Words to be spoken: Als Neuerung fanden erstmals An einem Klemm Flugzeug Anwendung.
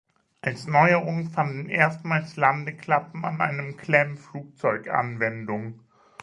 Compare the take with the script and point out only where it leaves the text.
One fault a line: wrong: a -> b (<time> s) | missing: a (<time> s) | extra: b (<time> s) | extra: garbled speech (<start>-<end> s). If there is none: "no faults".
extra: Landeklappen (2.4 s)